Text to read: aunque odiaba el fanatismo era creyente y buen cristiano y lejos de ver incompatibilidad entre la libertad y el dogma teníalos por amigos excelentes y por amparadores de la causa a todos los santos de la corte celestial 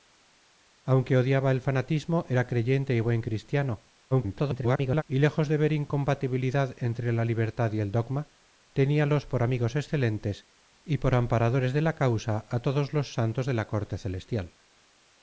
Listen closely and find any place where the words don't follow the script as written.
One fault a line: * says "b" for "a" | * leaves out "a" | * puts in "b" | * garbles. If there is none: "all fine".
* garbles